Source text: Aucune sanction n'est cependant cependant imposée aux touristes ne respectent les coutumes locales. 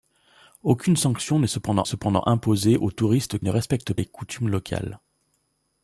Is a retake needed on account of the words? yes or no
no